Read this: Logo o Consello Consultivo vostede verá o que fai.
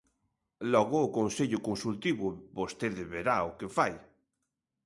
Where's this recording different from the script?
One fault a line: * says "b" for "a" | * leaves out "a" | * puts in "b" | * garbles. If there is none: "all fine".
all fine